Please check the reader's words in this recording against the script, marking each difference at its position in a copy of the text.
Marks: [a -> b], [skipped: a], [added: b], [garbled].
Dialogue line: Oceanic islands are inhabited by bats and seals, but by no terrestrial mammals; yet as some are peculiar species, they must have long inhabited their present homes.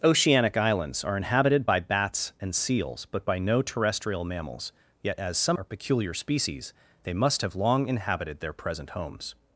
Oceanic islands are inhabited by bats and seals, but by no terrestrial mammals; yet as some are peculiar species, they must have long inhabited their present homes.